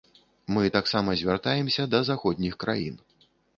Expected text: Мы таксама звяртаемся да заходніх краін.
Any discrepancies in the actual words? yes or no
no